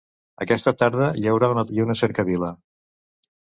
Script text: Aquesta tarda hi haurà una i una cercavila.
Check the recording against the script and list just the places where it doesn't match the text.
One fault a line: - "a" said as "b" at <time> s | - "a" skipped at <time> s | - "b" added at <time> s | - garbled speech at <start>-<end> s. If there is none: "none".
none